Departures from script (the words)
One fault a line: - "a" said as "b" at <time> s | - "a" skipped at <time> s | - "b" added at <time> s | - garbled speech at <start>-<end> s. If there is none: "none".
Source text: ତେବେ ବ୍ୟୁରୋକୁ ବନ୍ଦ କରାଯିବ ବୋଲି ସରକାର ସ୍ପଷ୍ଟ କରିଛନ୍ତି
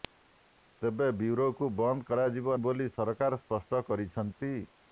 none